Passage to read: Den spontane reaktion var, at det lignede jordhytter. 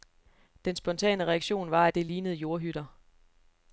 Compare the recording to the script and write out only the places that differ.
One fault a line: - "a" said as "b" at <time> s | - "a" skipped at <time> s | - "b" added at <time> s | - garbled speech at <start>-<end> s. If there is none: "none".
none